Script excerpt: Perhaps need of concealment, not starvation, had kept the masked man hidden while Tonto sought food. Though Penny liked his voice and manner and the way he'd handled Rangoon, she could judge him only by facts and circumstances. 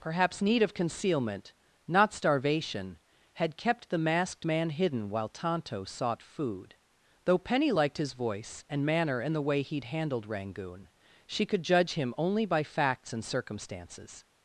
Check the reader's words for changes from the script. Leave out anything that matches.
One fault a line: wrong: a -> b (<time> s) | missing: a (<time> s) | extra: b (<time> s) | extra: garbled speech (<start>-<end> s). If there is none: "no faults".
no faults